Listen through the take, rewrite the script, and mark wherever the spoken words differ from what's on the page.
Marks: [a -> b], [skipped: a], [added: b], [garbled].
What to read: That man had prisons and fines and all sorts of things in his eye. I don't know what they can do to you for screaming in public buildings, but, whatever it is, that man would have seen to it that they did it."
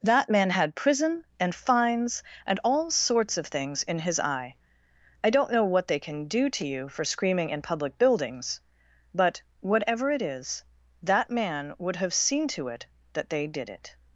That man had [prisons -> prison] and fines and all sorts of things in his eye. I don't know what they can do to you for screaming in public buildings, but, whatever it is, that man would have seen to it that they did it."